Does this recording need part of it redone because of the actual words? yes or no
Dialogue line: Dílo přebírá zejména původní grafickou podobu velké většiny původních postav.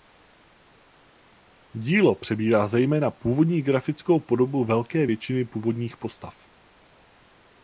no